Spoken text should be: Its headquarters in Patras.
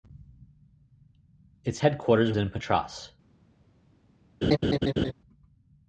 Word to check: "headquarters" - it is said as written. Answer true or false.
true